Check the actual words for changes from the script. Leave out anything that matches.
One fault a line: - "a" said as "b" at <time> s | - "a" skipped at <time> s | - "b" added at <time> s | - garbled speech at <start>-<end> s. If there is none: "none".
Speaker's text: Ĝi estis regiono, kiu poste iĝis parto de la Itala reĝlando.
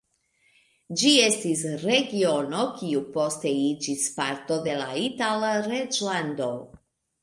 none